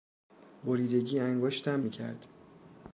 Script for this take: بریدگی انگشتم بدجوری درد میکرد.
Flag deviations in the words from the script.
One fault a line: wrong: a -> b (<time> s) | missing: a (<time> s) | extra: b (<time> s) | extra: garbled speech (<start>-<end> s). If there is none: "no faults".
missing: بدجوری درد (1.9 s)